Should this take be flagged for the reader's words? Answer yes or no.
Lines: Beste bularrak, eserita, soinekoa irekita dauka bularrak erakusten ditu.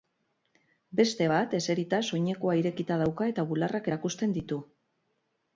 yes